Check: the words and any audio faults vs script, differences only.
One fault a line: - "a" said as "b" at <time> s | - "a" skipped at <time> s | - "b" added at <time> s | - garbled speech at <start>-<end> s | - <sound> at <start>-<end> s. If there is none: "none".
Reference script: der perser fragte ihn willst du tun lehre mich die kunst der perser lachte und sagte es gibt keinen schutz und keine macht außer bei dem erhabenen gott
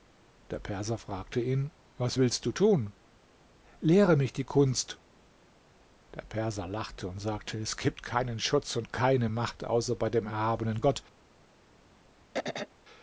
- "was" added at 2.0 s
- throat clearing at 12.3-12.7 s